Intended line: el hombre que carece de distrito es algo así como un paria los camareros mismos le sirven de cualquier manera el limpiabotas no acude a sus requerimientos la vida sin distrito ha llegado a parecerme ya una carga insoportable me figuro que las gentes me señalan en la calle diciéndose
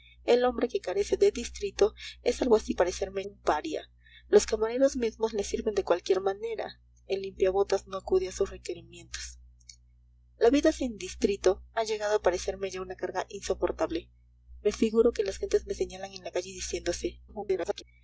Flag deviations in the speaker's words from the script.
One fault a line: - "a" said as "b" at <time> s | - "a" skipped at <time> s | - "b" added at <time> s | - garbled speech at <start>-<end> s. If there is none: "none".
- "como" said as "parecerme" at 2.8 s
- garbled speech at 17.3-17.8 s